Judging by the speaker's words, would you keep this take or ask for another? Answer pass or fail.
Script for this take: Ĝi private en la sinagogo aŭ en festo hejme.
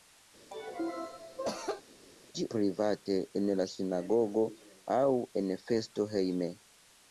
pass